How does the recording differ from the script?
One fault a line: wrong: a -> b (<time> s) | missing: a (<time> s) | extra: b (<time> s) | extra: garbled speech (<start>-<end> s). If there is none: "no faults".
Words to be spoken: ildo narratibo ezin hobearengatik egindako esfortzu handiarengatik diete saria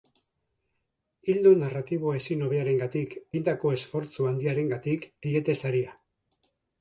no faults